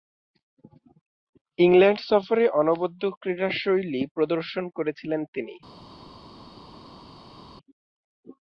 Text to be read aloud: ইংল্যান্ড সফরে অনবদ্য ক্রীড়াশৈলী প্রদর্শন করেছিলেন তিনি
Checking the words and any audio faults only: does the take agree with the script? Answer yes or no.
yes